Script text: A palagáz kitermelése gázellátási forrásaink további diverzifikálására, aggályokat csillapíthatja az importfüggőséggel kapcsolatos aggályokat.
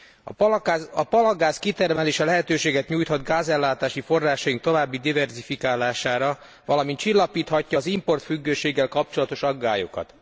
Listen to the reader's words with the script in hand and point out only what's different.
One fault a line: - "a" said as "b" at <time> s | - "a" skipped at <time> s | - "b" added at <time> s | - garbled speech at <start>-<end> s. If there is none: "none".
- "lehetőséget nyújthat" added at 2.2 s
- "aggályokat" said as "valamint" at 6.7 s